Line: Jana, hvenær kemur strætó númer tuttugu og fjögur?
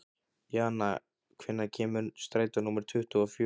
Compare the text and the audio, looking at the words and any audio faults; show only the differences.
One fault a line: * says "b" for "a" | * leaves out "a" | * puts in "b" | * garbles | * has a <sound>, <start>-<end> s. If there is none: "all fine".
all fine